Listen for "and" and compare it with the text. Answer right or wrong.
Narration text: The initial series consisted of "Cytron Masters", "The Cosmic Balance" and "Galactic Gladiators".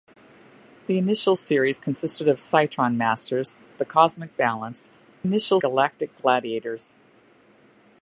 wrong